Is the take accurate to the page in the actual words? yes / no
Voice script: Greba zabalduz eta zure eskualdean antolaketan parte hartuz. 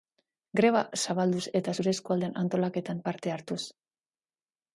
yes